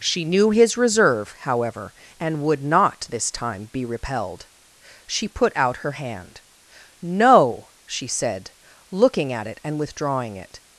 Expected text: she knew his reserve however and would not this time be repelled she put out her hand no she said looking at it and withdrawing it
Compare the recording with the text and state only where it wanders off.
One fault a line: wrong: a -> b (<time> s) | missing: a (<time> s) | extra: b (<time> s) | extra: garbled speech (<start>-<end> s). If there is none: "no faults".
no faults